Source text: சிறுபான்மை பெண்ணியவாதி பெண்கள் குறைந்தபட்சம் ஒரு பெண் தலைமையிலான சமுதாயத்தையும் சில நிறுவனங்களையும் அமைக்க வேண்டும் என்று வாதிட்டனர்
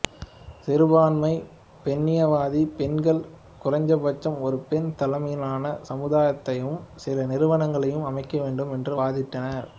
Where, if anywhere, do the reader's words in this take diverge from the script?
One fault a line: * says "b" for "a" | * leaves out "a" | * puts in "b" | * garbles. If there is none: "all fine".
all fine